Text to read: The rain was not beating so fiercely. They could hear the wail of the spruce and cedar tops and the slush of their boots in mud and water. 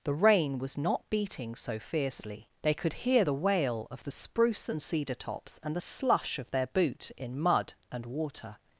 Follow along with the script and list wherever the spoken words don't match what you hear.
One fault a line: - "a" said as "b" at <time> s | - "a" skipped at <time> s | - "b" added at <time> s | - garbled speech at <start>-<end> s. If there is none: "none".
- "boots" said as "boot" at 6.7 s